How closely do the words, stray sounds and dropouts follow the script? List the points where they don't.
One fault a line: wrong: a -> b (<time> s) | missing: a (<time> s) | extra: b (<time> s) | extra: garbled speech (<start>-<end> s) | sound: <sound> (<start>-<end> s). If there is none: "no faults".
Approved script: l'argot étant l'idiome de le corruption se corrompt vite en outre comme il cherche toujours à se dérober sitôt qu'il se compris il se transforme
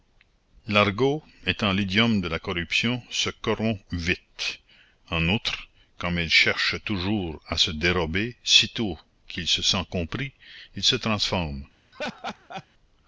wrong: le -> la (2.3 s)
extra: sent (9.6 s)
sound: laugh (11.9-12.7 s)